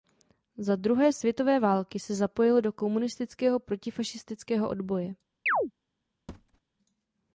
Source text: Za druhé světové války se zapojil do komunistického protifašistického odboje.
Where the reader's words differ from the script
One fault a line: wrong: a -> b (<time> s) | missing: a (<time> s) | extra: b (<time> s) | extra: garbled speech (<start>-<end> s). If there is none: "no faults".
no faults